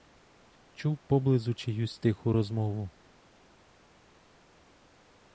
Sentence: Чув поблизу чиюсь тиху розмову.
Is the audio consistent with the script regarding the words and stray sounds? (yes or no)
yes